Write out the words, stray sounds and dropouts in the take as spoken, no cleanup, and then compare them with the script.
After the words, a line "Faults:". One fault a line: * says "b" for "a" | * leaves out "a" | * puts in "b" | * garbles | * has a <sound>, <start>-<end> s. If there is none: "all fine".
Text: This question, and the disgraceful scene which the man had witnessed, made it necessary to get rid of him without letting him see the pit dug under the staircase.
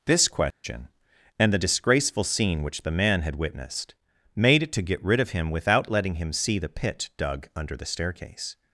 This question, and the disgraceful scene which the man had witnessed, made it to get rid of him without letting him see the pit dug under the staircase.
Faults:
* has a dropout, 0.5-0.6 s
* leaves out "necessary"